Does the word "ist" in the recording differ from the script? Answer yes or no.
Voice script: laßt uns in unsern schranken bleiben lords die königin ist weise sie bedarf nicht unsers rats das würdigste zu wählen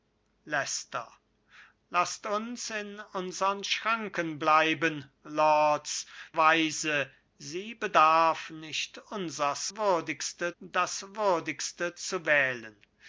yes